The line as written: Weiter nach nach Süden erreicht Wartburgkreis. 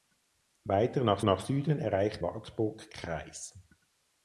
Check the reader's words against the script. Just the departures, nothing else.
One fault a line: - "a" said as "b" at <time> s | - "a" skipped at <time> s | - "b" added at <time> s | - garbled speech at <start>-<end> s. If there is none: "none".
none